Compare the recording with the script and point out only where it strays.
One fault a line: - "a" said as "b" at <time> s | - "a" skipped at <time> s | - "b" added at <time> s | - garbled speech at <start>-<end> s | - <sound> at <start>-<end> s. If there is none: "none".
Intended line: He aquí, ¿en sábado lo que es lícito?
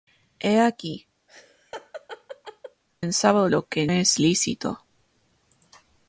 - laugh at 1.3-2.8 s